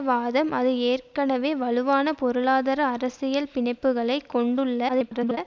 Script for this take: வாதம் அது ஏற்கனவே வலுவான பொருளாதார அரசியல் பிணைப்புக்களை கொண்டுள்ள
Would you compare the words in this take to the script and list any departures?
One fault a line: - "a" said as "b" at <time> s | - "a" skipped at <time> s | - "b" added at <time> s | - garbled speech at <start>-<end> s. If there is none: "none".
- garbled speech at 4.9-5.4 s